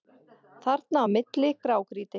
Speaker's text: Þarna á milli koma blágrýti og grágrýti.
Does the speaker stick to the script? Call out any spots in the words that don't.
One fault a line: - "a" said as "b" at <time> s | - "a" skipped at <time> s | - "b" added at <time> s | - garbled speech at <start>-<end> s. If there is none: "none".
- "koma blágrýti og" skipped at 1.5 s